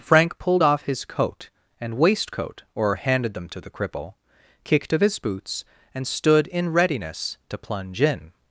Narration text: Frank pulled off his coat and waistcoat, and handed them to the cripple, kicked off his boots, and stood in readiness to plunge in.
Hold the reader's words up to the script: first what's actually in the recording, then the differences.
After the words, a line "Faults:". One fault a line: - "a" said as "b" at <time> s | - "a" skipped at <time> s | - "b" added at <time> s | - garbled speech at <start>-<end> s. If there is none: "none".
Frank pulled off his coat and waistcoat, or handed them to the cripple, kicked of his boots, and stood in readiness to plunge in.
Faults:
- "and" said as "or" at 2.7 s
- "off" said as "of" at 4.9 s